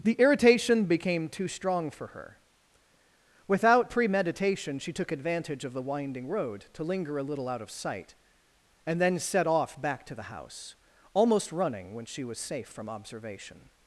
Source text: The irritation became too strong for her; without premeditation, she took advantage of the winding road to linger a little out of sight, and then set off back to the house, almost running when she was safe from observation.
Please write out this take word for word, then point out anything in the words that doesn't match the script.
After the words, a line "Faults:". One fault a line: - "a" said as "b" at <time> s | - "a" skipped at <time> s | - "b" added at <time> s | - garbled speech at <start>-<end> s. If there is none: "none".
The irritation became too strong for her; without premeditation, she took advantage of the winding road to linger a little out of sight, and then set off back to the house, almost running when she was safe from observation.
Faults:
none